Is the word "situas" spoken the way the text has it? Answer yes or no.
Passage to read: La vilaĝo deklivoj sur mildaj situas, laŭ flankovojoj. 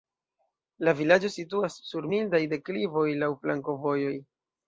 no